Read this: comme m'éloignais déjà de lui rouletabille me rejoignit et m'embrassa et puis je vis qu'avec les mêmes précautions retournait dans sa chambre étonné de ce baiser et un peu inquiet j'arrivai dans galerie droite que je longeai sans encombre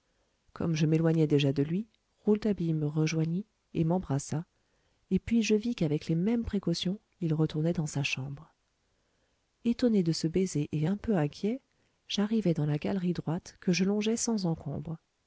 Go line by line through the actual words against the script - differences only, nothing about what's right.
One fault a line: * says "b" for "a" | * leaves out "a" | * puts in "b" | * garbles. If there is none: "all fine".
* puts in "je"
* puts in "il"
* puts in "la"